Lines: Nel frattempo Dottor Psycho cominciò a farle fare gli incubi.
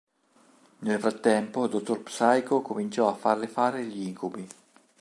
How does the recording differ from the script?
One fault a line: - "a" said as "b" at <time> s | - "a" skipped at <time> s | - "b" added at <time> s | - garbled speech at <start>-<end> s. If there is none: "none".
none